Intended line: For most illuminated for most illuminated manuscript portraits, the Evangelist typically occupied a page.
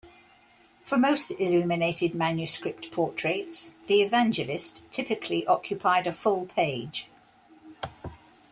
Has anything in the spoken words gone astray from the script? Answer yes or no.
yes